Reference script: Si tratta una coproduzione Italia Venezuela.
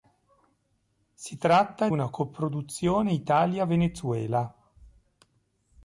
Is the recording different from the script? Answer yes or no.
no